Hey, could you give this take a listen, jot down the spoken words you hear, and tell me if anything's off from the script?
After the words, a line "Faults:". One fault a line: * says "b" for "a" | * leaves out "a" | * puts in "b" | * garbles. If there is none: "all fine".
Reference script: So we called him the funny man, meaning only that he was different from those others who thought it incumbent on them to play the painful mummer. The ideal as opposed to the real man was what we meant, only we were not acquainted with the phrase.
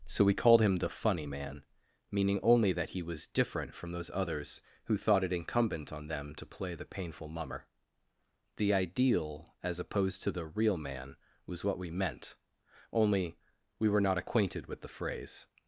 So we called him the funny man, meaning only that he was different from those others who thought it incumbent on them to play the painful mummer. The ideal as opposed to the real man was what we meant, only we were not acquainted with the phrase.
Faults:
all fine